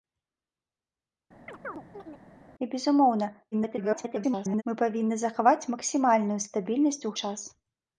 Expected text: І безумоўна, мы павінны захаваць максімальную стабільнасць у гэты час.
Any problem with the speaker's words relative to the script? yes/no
yes